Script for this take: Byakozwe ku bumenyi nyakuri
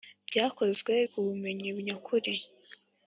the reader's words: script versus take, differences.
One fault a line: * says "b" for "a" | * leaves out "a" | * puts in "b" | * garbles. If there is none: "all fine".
all fine